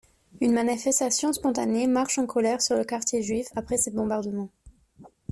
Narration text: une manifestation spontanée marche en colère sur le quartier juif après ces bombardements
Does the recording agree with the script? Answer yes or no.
yes